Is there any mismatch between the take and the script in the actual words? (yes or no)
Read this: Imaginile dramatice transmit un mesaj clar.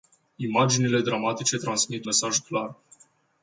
yes